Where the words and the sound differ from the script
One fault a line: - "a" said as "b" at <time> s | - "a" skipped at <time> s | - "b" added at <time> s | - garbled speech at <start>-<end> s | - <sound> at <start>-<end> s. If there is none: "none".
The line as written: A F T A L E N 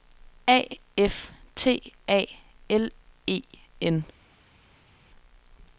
none